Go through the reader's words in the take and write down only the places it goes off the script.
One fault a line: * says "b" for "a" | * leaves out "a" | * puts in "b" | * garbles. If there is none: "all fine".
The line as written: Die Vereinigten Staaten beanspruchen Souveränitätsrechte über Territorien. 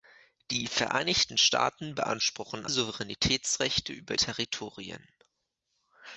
all fine